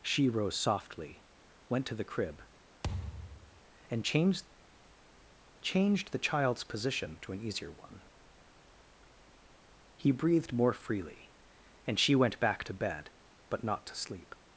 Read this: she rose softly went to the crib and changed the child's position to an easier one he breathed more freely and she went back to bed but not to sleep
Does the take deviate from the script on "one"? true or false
false